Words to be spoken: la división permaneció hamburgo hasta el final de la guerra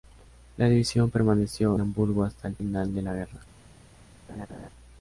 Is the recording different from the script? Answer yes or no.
no